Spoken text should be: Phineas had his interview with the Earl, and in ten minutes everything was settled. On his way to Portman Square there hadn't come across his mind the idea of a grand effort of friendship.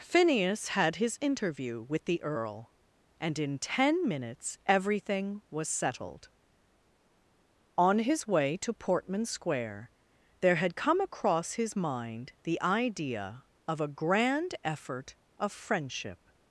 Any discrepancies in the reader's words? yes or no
yes